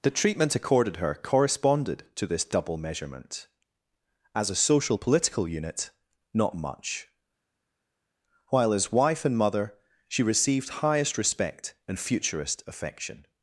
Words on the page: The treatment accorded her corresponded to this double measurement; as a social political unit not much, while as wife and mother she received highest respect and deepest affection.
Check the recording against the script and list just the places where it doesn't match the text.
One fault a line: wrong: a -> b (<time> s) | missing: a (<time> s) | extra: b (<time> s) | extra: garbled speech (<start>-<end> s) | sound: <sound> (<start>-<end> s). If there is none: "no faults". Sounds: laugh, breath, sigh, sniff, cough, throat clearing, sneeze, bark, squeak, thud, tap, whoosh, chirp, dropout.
wrong: deepest -> futurist (12.0 s)